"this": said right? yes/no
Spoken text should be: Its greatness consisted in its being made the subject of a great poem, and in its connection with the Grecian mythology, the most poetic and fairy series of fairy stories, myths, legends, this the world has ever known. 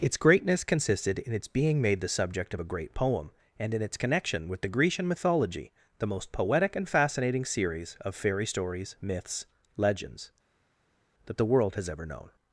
no